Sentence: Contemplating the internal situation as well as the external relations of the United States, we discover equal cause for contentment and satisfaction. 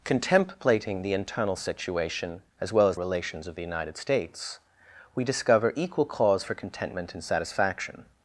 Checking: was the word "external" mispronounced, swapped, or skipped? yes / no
yes